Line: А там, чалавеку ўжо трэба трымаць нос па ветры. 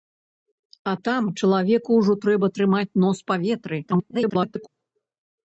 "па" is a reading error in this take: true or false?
false